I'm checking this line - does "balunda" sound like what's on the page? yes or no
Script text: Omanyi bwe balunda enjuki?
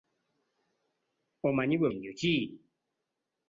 no